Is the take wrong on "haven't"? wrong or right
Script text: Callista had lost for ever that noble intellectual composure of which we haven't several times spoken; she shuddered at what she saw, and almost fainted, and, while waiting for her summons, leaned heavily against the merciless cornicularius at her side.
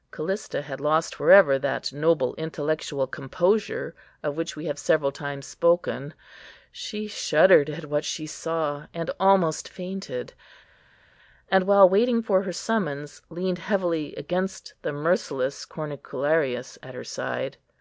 wrong